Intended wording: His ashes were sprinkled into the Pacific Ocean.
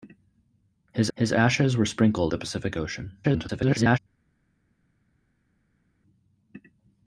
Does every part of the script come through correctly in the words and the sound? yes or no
no